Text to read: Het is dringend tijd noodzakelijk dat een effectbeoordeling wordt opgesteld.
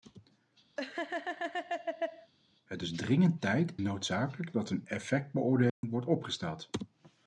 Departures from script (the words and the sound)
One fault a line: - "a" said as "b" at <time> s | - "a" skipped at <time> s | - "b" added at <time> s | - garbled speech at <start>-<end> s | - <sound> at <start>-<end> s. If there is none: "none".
- laugh at 0.8-2.3 s
- dropout at 5.7-5.8 s